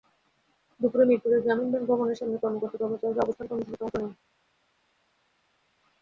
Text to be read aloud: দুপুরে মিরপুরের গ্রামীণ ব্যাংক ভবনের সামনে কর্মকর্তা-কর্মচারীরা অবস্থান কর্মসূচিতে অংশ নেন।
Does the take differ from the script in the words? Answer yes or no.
no